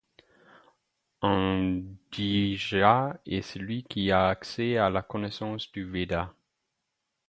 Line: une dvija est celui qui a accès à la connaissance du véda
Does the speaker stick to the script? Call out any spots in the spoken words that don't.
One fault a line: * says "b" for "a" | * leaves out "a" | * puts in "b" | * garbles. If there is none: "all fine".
* says "un" for "une"